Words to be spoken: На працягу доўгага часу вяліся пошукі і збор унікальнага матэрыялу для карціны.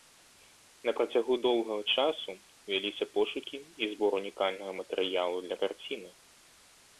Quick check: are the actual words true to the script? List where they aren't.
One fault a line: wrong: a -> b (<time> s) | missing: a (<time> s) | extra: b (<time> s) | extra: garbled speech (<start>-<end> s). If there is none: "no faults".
no faults